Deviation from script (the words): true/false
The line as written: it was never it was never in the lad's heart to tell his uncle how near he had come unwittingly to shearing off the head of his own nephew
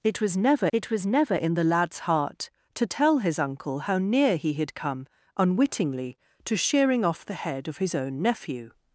false